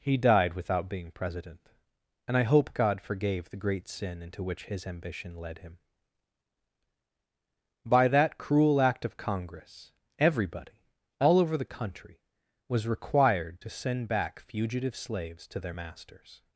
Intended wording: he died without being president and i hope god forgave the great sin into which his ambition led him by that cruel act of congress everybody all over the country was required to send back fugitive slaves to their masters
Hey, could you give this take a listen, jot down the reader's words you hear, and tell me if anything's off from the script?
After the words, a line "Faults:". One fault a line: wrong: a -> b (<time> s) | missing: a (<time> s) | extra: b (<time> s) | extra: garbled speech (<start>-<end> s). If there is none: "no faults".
he died without being president and i hope god forgave the great sin into which his ambition led him by that cruel act of congress everybody all over the country was required to send back fugitive slaves to their masters
Faults:
no faults